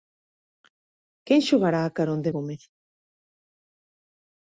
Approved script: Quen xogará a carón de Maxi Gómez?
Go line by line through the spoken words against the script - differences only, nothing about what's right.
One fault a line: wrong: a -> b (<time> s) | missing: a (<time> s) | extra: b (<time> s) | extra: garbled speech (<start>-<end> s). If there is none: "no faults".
missing: Maxi (2.3 s)